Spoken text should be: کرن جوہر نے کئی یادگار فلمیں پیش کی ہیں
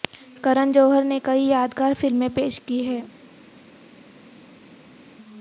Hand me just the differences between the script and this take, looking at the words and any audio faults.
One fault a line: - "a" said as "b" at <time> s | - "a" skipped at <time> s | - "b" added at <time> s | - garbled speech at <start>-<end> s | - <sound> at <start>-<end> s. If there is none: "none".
none